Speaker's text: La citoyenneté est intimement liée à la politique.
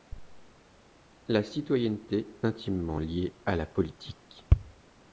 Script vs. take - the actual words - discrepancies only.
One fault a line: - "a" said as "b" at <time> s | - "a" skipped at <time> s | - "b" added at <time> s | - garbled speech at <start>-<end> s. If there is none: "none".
- "est" skipped at 2.4 s